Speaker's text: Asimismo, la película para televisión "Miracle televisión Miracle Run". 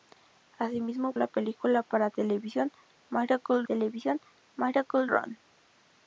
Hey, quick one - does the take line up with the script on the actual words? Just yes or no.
yes